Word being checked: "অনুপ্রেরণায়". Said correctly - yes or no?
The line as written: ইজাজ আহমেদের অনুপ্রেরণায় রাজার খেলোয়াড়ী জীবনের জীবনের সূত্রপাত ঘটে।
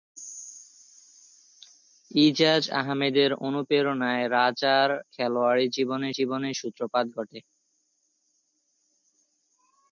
yes